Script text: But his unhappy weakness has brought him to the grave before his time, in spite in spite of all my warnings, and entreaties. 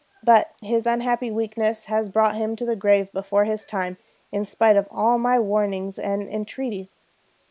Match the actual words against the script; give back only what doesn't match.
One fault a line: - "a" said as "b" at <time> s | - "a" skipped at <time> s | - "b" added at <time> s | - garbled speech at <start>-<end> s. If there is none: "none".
- "in spite" skipped at 4.8 s